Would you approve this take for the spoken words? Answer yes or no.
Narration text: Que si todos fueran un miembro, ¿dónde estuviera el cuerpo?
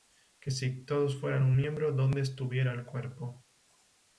yes